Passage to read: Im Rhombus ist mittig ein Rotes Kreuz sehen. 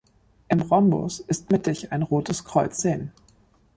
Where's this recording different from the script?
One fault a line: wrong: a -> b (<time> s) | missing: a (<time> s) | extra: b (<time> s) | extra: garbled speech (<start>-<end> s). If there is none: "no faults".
no faults